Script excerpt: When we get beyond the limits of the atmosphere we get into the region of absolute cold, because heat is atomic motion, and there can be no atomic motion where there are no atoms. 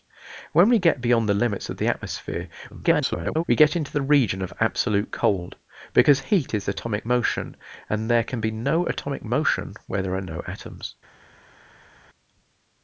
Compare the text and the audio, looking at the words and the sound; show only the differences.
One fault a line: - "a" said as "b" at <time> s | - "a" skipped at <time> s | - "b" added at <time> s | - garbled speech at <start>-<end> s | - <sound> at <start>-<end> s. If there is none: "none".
- garbled speech at 2.7-3.4 s